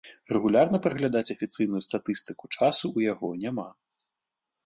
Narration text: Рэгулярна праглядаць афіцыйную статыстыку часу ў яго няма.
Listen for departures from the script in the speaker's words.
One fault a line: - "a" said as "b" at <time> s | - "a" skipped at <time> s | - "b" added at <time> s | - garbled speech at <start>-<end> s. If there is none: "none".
none